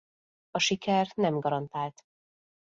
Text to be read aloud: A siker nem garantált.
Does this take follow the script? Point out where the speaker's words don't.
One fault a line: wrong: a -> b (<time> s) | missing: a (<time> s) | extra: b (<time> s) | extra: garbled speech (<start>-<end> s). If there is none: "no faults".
no faults